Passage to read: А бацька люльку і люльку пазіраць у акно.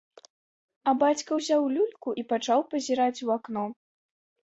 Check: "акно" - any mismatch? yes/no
no